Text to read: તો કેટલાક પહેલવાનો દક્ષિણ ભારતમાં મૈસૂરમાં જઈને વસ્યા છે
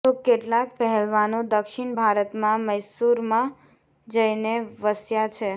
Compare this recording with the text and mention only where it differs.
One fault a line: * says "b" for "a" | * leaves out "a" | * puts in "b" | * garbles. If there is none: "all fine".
all fine